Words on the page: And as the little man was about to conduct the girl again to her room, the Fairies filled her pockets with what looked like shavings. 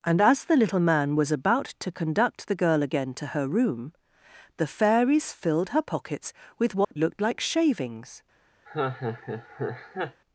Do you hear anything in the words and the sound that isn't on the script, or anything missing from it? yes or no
yes